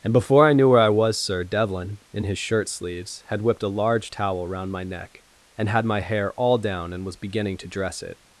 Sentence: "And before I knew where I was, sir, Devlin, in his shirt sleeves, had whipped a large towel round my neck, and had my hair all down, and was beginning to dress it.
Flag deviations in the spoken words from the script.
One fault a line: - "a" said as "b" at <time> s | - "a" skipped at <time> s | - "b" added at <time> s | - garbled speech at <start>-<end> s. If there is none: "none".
none